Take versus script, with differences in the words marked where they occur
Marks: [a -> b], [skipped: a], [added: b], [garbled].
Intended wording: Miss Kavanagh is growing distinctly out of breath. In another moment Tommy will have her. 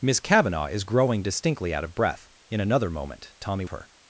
Miss Kavanagh is growing distinctly out of breath. In another moment Tommy [skipped: will have] her.